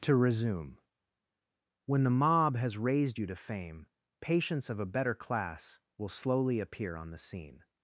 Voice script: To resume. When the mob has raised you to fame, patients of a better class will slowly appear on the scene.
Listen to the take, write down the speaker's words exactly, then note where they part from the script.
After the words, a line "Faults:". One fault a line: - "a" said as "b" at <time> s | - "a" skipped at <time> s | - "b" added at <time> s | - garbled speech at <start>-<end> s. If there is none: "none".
To resume. When the mob has raised you to fame, patients of a better class will slowly appear on the scene.
Faults:
none